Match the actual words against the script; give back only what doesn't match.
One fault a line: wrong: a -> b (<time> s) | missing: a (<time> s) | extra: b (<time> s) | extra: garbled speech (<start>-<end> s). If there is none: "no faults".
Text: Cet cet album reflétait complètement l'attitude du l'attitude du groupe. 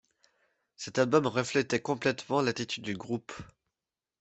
missing: cet (1.0 s)
missing: l'attitude du (2.9 s)